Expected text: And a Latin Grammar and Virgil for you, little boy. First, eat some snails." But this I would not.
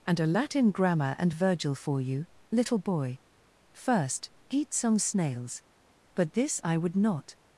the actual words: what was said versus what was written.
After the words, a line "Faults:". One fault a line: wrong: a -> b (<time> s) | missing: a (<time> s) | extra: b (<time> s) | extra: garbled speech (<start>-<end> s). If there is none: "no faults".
And a Latin Grammar and Virgil for you, little boy. First, eat some snails." But this I would not.
Faults:
no faults